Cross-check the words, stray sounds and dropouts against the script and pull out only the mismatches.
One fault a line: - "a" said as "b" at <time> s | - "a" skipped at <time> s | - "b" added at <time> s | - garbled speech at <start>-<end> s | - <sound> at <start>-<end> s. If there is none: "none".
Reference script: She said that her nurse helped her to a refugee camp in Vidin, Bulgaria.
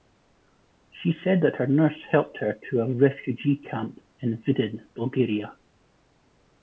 none